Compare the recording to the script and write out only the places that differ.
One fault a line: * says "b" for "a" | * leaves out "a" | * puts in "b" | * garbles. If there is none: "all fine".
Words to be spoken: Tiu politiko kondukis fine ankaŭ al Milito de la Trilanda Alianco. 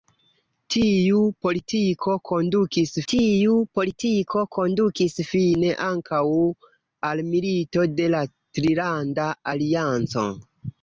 * puts in "tiu politiko kondukis"